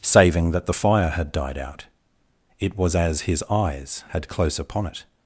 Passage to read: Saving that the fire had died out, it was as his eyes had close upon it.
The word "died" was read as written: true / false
true